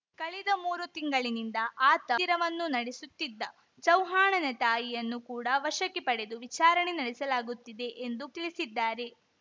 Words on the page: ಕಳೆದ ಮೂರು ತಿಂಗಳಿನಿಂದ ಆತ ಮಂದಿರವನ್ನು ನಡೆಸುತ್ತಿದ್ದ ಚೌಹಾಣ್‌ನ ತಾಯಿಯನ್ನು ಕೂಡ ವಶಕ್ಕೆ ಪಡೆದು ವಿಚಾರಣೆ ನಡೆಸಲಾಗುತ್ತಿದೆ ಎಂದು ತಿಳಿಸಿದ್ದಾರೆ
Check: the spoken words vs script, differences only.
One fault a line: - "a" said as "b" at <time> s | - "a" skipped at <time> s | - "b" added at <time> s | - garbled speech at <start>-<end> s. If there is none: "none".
none